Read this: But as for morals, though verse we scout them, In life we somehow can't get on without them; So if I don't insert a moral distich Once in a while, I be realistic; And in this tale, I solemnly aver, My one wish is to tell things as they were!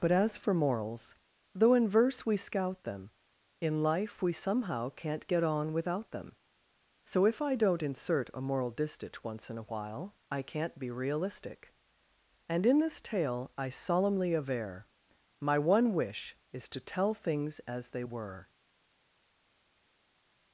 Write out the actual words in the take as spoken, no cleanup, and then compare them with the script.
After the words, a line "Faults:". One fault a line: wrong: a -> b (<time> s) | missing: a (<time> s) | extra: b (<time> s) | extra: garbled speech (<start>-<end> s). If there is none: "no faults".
But as for morals, though in verse we scout them, In life we somehow can't get on without them; So if I don't insert a moral distich Once in a while, I can't be realistic; And in this tale, I solemnly aver, My one wish is to tell things as they were!
Faults:
extra: in (1.8 s)
extra: can't (10.4 s)